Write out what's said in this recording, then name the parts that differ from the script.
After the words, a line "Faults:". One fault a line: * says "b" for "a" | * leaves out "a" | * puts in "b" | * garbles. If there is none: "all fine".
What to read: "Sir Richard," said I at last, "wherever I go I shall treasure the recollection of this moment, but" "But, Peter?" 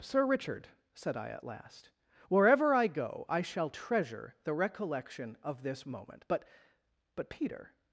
"Sir Richard," said I at last, "wherever I go I shall treasure the recollection of this moment, but" "But, Peter?"
Faults:
all fine